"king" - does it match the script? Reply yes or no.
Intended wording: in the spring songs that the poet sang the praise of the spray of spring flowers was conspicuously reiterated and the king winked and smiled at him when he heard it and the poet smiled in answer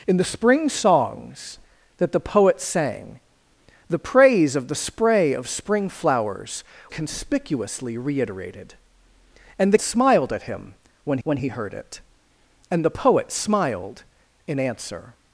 no